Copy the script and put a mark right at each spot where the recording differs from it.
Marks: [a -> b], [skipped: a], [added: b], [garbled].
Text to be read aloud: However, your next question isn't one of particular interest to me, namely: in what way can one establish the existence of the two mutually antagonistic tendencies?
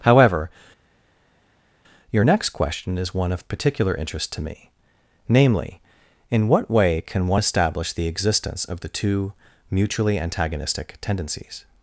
However, your next question [isn't -> is] one of particular interest to me, namely: in what way can one establish the existence of the two mutually antagonistic tendencies?